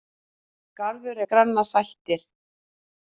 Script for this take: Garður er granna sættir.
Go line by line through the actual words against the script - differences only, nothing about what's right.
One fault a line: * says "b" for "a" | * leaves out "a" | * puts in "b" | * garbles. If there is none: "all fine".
all fine